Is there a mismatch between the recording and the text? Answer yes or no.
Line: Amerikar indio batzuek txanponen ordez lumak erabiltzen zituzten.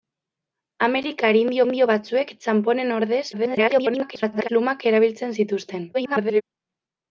yes